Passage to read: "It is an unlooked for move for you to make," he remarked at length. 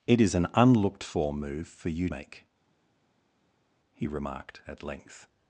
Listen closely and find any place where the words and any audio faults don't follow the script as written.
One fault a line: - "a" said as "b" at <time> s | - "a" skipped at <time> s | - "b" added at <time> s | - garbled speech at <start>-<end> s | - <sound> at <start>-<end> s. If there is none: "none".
- "to" skipped at 2.1 s